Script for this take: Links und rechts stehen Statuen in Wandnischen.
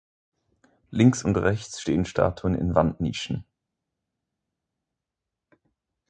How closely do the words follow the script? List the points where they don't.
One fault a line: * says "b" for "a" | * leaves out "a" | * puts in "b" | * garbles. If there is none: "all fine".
all fine